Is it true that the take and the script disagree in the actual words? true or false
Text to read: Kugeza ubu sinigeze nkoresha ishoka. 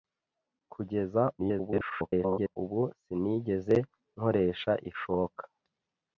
true